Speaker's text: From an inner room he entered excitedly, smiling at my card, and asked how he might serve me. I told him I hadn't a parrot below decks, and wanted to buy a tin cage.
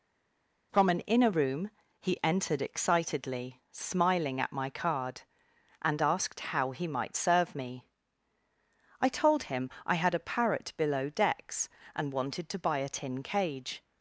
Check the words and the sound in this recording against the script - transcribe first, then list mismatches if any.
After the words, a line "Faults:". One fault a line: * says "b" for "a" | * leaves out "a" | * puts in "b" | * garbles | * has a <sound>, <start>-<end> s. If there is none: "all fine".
From an inner room he entered excitedly, smiling at my card, and asked how he might serve me. I told him I had a parrot below decks, and wanted to buy a tin cage.
Faults:
* says "had" for "hadn't"